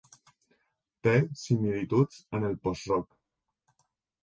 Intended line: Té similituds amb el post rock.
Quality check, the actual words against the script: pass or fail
pass